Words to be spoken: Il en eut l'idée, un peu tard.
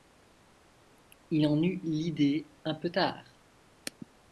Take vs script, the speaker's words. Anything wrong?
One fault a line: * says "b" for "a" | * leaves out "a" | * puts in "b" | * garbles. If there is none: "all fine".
all fine